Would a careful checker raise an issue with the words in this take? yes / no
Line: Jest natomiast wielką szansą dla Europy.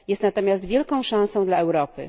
no